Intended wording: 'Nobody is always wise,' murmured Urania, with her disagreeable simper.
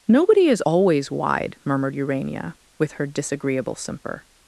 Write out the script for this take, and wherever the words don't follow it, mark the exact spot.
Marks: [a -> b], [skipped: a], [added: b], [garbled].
'Nobody is always [wise,' -> wide] murmured Urania, with her disagreeable simper.